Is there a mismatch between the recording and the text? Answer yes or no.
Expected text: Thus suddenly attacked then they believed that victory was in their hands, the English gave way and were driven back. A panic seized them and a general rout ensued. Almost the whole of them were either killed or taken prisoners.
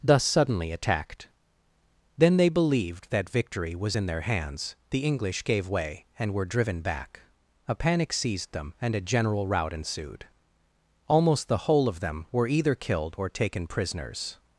no